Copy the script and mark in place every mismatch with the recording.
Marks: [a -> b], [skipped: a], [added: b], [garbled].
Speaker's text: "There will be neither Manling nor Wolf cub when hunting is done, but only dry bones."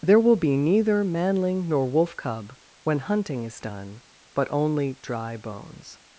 "There will be neither Manling nor Wolf cub when hunting is done, but only dry bones."